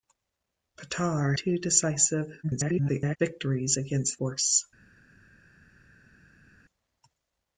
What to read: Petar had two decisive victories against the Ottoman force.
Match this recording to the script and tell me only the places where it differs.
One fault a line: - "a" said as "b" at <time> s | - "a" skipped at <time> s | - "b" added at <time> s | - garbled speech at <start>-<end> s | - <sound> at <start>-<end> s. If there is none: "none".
- "had" skipped at 1.3 s
- garbled speech at 2.4-3.2 s
- "the Ottoman" skipped at 4.2 s